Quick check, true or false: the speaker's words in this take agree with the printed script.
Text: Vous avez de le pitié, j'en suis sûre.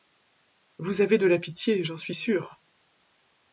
false